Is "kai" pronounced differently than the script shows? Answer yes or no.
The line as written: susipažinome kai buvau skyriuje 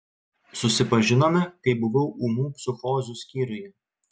no